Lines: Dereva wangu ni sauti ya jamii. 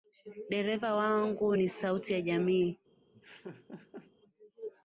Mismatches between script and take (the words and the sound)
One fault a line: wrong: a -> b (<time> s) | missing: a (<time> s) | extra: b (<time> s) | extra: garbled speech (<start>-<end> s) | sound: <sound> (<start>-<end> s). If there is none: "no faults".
sound: laugh (3.1-4.1 s)